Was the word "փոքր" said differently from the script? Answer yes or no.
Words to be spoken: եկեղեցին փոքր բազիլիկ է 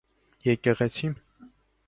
yes